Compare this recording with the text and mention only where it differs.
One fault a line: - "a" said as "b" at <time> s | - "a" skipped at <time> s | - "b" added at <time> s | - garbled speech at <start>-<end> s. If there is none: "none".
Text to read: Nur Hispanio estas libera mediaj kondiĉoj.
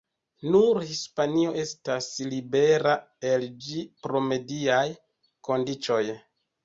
- "el ĝi pro" added at 3.3 s